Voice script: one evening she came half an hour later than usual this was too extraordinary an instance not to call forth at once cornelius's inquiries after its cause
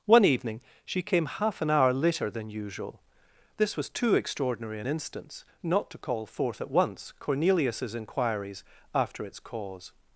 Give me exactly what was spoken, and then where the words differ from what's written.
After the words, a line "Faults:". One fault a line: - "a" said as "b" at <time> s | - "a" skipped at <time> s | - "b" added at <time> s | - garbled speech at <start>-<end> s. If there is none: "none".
one evening she came half an hour later than usual this was too extraordinary an instance not to call forth at once cornelius's inquiries after its cause
Faults:
none